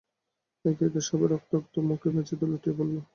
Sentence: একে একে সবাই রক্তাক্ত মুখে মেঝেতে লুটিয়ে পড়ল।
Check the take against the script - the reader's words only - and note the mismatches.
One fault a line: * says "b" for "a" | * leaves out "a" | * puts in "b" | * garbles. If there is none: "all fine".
all fine